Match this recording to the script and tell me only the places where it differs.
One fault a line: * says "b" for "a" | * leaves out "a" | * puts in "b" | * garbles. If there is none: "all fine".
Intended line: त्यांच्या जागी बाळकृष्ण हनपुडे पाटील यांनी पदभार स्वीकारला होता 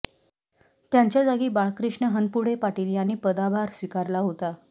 all fine